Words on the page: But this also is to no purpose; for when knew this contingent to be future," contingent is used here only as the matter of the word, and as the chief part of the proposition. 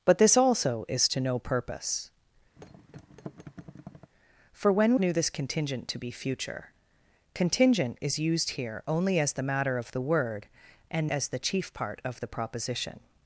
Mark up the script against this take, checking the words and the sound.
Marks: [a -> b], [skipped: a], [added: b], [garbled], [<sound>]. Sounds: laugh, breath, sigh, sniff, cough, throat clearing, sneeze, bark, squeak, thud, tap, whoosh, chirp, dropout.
But this also is to no purpose; [thud] for when knew this contingent to be future," contingent is used here only as the matter of the word, and as the chief part of the proposition.